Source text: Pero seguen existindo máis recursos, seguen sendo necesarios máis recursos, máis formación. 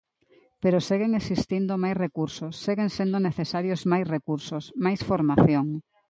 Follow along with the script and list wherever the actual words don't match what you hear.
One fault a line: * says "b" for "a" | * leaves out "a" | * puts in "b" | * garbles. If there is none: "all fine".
all fine